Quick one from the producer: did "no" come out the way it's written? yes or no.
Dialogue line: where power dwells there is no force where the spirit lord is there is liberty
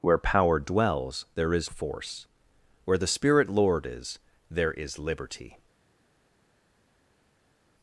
no